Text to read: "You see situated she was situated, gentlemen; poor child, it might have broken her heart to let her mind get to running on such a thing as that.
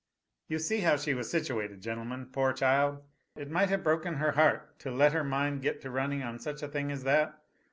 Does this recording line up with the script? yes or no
no